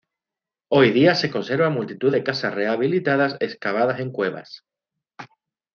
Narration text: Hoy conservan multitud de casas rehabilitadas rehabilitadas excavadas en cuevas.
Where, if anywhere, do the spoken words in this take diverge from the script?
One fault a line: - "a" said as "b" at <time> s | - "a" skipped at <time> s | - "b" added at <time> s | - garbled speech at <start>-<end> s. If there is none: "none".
- "día se" added at 0.9 s
- "rehabilitadas" skipped at 3.4 s